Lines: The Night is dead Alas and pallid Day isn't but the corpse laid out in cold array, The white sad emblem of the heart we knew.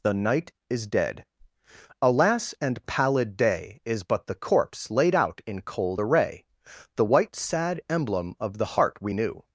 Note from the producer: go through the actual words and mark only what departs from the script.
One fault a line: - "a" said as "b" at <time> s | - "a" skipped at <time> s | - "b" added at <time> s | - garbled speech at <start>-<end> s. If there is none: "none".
- "isn't" said as "is" at 3.9 s